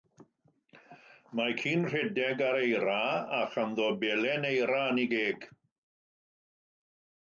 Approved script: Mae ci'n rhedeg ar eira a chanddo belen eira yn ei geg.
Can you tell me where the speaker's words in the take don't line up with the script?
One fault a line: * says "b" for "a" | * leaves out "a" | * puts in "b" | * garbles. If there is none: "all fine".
all fine